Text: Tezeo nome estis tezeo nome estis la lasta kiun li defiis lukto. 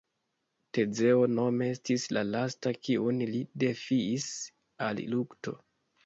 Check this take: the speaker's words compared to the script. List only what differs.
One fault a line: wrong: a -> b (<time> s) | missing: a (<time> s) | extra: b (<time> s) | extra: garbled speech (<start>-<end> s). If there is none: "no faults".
missing: tezeo nome estis (2.0 s)
extra: al (4.9 s)